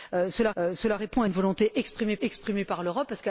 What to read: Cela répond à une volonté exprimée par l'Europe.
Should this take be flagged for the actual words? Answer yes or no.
yes